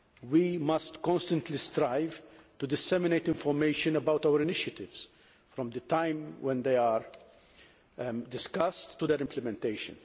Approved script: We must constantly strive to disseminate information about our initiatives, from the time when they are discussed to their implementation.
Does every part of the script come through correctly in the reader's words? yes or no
yes